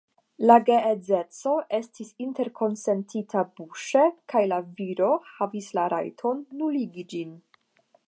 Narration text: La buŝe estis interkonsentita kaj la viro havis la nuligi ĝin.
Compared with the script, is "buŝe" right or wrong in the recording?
wrong